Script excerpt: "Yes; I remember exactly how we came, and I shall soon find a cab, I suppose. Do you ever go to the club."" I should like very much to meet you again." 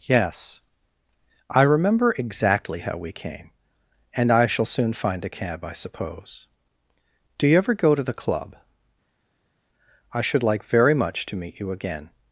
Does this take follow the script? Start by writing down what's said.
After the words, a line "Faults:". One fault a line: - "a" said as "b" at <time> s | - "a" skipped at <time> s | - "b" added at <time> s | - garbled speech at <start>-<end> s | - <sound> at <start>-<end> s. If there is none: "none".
"Yes; I remember exactly how we came, and I shall soon find a cab, I suppose. Do you ever go to the club."" I should like very much to meet you again."
Faults:
none